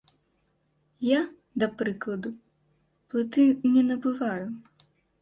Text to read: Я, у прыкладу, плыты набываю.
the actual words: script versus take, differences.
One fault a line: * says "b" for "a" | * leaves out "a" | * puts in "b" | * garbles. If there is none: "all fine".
* says "да" for "у"
* puts in "не"